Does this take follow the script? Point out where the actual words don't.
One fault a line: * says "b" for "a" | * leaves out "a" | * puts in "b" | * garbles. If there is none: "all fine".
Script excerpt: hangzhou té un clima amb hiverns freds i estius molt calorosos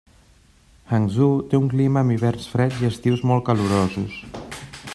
all fine